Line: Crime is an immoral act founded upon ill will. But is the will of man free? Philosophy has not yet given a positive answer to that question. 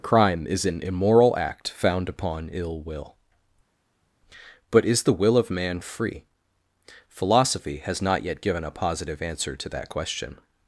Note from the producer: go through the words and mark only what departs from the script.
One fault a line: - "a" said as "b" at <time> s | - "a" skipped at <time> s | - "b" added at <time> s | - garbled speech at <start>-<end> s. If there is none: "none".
- "founded" said as "found" at 1.7 s